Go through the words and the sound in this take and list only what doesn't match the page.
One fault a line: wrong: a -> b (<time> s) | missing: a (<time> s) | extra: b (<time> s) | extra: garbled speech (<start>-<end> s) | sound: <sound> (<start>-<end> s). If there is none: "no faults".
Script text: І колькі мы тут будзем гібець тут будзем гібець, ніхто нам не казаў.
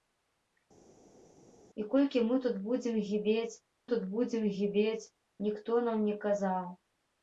no faults